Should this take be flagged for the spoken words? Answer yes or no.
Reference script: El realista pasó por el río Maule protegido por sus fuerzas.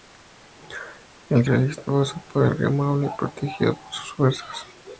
no